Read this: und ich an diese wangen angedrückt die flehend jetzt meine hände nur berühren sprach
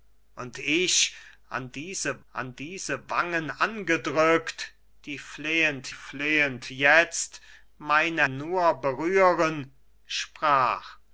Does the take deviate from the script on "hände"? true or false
true